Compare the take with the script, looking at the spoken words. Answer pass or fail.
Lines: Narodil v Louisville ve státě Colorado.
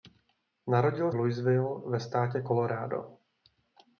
pass